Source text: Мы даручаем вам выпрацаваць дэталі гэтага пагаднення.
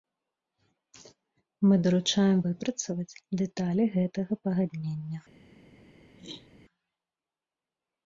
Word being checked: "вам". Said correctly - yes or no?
no